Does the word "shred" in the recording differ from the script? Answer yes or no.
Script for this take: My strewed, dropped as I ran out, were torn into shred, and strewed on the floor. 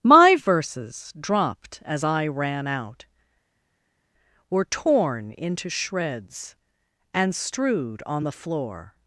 yes